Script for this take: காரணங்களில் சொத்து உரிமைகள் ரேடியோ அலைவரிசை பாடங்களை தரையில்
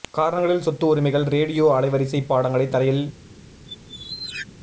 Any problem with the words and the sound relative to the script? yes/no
yes